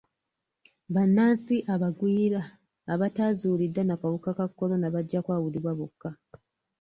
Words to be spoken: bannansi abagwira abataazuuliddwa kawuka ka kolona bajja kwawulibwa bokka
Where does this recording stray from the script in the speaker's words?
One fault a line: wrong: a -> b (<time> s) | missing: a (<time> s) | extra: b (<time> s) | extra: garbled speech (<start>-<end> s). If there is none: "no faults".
extra: na (3.9 s)